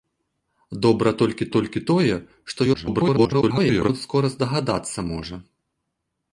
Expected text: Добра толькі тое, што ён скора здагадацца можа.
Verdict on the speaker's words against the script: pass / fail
fail